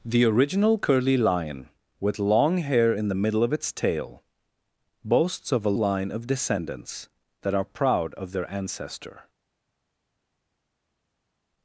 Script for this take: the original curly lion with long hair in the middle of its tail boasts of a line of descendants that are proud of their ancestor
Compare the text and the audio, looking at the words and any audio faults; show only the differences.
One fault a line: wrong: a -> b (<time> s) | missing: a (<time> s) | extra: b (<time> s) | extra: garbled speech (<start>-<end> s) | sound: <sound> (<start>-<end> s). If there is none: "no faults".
no faults